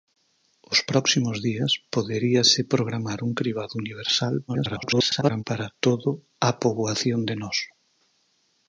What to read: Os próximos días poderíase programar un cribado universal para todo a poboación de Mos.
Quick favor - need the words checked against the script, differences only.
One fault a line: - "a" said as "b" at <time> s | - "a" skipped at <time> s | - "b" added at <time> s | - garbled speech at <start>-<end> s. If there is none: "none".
- garbled speech at 4.5-5.4 s